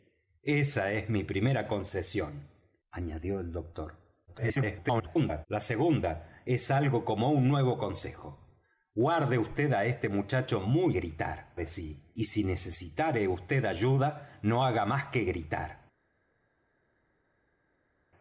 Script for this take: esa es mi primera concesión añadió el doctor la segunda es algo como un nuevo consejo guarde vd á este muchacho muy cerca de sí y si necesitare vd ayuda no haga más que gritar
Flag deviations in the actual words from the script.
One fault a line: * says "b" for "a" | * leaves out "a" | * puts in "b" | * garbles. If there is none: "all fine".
* garbles
* says "gritar" for "cerca"